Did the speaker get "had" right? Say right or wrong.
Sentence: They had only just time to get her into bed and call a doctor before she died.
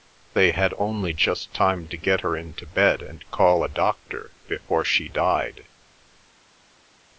right